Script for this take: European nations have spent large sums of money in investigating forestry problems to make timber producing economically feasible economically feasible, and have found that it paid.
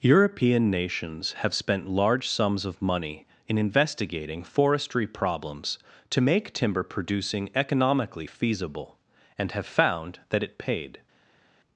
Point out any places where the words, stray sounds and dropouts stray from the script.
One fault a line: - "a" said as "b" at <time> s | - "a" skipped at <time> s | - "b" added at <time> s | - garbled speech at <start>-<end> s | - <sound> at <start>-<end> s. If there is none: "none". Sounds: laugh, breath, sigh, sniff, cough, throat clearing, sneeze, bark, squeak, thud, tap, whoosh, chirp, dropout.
- "economically feasible" skipped at 9.0 s